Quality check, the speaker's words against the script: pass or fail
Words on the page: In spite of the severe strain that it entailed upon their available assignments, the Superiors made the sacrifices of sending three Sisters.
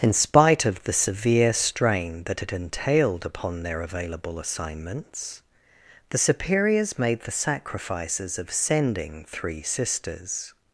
pass